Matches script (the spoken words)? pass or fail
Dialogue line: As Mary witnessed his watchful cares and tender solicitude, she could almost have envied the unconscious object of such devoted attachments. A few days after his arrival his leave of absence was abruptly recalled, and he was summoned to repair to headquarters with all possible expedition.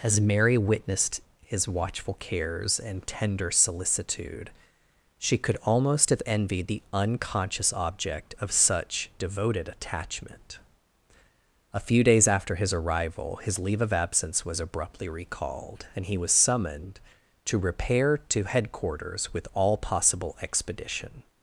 fail